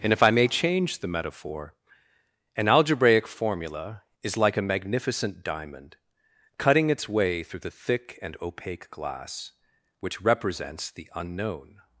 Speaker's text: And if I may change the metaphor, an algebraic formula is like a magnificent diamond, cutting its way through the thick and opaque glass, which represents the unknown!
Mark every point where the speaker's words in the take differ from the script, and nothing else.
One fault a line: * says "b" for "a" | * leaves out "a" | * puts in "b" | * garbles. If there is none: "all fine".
all fine